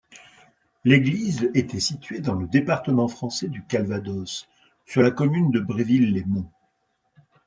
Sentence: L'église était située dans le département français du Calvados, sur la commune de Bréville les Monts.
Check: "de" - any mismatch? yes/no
no